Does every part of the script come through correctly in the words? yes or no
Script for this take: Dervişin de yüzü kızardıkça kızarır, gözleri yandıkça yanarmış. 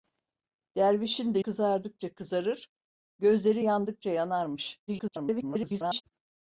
no